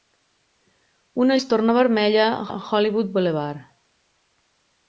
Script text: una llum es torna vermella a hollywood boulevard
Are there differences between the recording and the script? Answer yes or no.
yes